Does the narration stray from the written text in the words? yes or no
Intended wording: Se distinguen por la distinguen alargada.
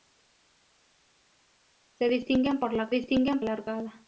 no